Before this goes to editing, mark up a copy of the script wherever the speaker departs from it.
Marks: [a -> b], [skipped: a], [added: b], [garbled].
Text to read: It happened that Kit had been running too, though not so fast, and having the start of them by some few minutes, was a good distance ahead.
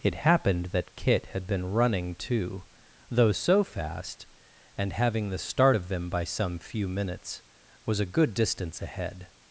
It happened that Kit had been running too, though [skipped: not] so fast, and having the start of them by some few minutes, was a good distance ahead.